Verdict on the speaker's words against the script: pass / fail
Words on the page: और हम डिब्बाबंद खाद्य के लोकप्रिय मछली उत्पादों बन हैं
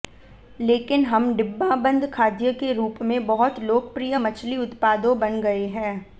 fail